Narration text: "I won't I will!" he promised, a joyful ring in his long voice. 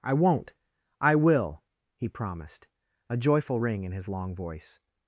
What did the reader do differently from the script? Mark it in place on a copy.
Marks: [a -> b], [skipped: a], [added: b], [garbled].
"I won't I will!" he promised, a joyful ring in his long voice.